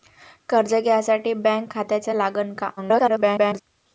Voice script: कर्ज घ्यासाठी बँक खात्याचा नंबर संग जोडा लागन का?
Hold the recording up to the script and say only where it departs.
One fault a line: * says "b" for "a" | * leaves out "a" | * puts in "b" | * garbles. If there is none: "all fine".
* leaves out "नंबर संग जोडा"
* garbles